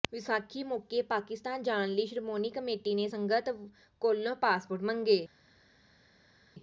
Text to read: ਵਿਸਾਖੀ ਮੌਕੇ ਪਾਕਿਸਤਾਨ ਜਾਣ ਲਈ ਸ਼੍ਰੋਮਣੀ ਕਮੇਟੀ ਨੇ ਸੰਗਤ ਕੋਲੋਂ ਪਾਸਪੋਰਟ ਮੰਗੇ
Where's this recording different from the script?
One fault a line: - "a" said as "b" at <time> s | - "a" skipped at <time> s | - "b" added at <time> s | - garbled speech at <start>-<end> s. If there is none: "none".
none